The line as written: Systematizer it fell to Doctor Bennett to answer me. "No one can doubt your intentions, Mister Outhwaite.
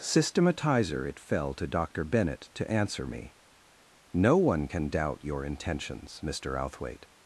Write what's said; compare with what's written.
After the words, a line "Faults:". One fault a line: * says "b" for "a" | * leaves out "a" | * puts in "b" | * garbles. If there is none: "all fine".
Systematizer it fell to Doctor Bennett to answer me. "No one can doubt your intentions, Mister Outhwaite.
Faults:
all fine